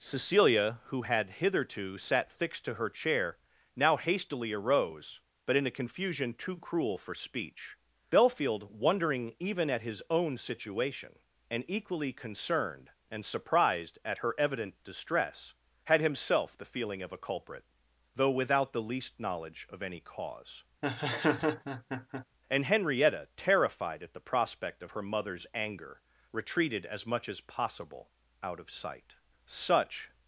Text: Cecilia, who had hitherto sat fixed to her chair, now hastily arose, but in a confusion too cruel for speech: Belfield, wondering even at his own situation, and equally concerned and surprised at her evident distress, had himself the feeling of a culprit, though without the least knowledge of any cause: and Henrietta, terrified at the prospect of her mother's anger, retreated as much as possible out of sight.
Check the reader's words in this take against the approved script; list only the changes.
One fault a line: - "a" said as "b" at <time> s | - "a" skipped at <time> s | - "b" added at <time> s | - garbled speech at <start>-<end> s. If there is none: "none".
- "Such" added at 29.5 s